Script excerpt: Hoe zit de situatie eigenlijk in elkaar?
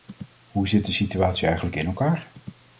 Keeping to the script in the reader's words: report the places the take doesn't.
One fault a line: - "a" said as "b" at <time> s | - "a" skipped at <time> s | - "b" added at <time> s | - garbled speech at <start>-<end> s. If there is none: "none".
none